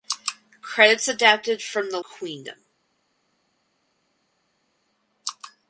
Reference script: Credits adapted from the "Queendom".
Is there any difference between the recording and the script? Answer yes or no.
no